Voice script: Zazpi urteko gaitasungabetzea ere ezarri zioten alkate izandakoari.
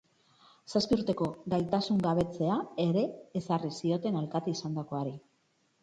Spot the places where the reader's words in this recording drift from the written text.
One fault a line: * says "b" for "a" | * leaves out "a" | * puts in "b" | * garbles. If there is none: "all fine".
all fine